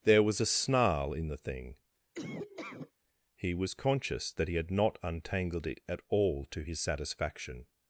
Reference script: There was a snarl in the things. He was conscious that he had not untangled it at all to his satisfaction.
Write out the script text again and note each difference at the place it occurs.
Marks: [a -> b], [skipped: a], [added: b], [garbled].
There was a snarl in the [things. -> thing] He was conscious that he had not untangled it at all to his satisfaction.